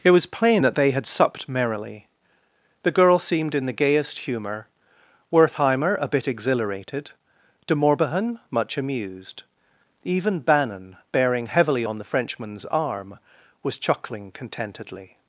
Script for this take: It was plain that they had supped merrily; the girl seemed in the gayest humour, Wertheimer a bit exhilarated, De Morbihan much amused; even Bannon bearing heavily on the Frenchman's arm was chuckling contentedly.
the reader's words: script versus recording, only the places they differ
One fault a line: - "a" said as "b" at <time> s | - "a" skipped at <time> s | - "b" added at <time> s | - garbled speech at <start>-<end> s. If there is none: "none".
none